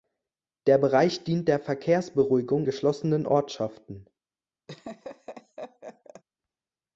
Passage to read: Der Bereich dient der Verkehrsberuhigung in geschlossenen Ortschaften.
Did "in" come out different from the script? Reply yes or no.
yes